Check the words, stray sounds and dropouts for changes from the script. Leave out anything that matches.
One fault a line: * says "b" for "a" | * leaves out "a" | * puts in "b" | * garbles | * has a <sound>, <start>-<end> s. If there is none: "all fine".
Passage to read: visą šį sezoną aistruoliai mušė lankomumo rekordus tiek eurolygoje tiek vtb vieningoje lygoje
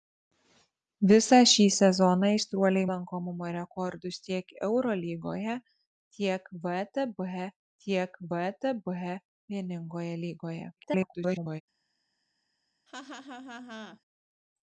* leaves out "mušė"
* puts in "tiek vtb"
* garbles
* has a laugh, 12.9-14.0 s